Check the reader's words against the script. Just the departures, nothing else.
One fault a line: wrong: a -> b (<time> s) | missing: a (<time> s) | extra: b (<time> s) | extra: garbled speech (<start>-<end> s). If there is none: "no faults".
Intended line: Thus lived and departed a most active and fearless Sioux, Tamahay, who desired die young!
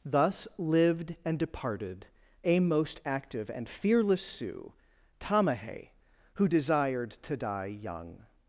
extra: to (7.1 s)